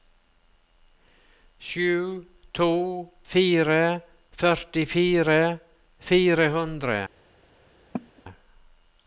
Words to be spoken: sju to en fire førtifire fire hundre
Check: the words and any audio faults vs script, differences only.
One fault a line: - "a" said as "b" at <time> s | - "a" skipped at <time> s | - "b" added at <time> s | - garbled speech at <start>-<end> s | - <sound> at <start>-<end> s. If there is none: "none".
- "en" skipped at 2.7 s
- cough at 7.9-8.2 s